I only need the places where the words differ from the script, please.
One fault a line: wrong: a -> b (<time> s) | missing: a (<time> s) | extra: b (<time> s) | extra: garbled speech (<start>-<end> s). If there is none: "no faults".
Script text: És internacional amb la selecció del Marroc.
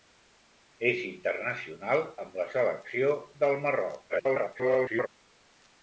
extra: garbled speech (4.1-5.1 s)